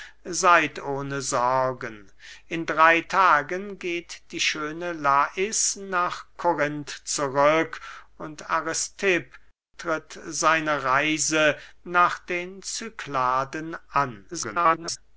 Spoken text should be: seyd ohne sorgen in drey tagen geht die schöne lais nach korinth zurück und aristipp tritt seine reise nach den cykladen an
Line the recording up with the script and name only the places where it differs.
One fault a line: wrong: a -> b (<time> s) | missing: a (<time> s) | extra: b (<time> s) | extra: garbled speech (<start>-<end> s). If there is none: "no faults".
extra: garbled speech (14.3-15.0 s)